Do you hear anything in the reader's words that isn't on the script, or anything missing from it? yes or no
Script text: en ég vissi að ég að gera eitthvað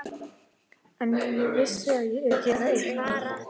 no